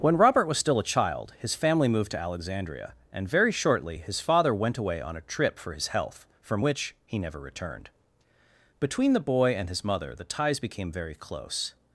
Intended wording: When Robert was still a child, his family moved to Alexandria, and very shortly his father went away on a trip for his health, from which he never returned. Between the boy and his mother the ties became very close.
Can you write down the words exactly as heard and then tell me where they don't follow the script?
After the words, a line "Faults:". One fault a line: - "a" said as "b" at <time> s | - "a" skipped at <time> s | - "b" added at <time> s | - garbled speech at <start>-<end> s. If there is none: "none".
When Robert was still a child, his family moved to Alexandria, and very shortly his father went away on a trip for his health, from which he never returned. Between the boy and his mother the ties became very close.
Faults:
none